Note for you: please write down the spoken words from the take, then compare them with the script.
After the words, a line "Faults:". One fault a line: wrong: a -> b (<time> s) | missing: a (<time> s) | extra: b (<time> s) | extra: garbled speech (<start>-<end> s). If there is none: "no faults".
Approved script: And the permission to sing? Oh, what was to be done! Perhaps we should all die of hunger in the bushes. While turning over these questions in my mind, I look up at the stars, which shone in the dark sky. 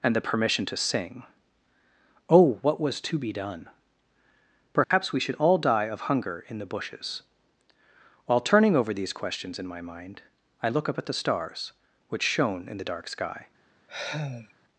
And the permission to sing? Oh, what was to be done! Perhaps we should all die of hunger in the bushes. While turning over these questions in my mind, I look up at the stars, which shone in the dark sky.
Faults:
no faults